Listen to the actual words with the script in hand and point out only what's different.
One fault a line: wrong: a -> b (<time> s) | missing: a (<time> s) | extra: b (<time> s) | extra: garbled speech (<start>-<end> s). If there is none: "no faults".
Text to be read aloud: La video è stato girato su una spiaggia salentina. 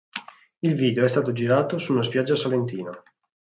wrong: La -> Il (0.6 s)